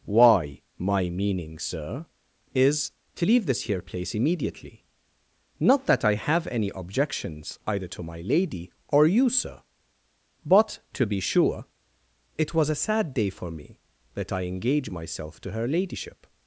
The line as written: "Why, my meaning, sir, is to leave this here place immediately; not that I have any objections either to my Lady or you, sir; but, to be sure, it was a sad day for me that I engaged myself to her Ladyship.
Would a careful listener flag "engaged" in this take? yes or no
yes